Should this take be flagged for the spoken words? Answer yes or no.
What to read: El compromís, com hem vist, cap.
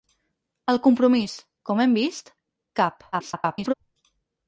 yes